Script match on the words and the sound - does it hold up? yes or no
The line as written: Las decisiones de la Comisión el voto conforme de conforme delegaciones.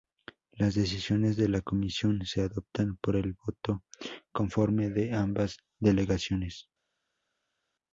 no